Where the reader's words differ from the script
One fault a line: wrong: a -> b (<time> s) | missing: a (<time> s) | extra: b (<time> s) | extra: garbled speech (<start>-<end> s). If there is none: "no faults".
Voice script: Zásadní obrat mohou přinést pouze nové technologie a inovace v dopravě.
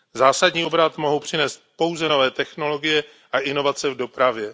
no faults